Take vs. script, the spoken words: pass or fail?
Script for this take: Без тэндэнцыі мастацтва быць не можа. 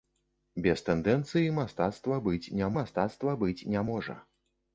fail